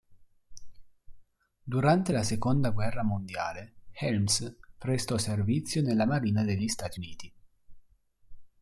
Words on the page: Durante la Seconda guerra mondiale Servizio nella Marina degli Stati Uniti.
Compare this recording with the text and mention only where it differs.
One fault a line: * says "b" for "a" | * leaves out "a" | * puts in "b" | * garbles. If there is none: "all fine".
* puts in "Helms prestò"